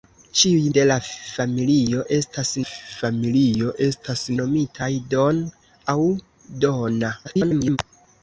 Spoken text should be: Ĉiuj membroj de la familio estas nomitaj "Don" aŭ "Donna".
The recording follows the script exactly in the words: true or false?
false